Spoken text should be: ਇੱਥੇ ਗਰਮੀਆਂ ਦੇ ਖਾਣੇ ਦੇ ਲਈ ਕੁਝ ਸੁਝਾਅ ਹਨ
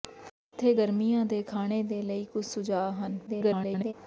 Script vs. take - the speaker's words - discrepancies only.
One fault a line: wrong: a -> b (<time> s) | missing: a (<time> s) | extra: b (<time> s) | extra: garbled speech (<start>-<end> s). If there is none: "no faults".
extra: garbled speech (3.3-3.9 s)